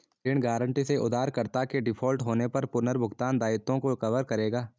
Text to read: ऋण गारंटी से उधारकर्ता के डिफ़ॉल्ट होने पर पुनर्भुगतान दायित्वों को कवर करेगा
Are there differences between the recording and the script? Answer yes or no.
no